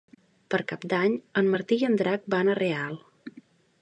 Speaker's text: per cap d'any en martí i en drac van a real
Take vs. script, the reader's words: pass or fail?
pass